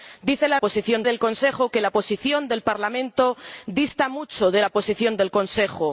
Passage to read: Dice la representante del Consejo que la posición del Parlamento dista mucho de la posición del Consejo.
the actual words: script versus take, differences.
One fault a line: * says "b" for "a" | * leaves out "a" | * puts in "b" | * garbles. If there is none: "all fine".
* says "posición" for "representante"